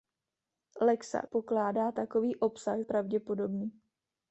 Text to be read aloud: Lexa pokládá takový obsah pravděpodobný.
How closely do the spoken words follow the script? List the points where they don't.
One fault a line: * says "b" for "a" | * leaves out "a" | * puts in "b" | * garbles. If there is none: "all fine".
all fine